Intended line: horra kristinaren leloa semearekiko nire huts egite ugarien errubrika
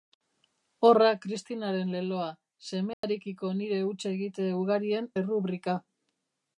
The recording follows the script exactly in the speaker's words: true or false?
true